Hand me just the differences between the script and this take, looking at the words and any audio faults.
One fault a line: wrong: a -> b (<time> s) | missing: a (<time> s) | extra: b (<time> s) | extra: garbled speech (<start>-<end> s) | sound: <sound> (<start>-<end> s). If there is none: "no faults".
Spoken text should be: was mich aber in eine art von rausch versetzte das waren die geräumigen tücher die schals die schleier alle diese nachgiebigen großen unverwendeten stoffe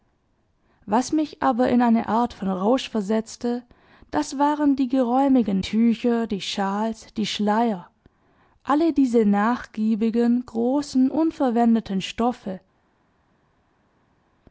no faults